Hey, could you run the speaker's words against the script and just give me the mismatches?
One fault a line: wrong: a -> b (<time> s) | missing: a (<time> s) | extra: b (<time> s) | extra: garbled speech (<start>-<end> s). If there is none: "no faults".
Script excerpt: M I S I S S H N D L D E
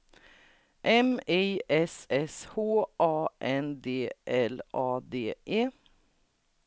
missing: I (2.1 s)
wrong: S H -> H A (2.6 s)
extra: A (4.7 s)